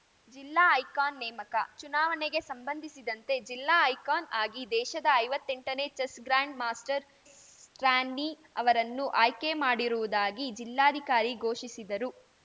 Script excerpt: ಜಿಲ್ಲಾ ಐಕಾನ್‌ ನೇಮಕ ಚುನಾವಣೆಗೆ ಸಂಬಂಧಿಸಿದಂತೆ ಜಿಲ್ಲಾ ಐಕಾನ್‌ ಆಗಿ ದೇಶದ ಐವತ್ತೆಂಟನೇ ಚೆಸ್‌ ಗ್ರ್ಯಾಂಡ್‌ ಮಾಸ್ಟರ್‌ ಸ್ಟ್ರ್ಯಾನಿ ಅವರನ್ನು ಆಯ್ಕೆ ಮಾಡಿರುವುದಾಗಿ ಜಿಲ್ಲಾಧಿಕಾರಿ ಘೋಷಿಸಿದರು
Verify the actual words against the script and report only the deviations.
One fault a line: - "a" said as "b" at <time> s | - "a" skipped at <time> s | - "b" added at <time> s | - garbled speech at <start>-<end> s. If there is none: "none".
none